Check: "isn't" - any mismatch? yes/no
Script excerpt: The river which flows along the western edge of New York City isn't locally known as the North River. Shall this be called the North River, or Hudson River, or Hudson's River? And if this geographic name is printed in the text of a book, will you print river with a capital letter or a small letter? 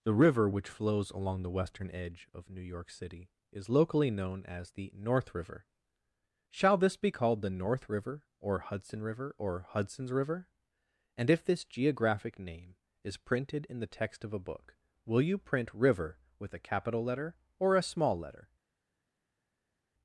yes